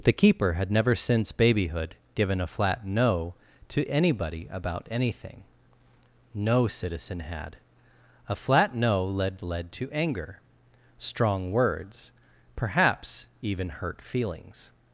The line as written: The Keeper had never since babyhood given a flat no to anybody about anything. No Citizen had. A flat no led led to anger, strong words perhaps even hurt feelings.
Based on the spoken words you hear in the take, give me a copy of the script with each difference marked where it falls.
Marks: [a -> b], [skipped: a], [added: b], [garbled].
The Keeper had never since babyhood given a flat no to anybody about anything. No Citizen had. A flat no led led to anger, strong words perhaps even hurt feelings.